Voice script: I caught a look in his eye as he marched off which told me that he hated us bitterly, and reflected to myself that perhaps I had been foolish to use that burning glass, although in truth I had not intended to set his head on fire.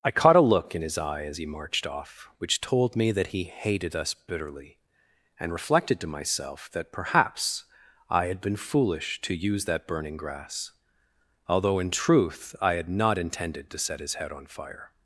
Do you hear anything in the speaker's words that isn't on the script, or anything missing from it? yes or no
yes